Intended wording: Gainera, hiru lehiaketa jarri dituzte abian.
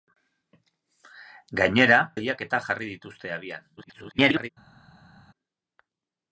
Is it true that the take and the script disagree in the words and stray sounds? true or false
true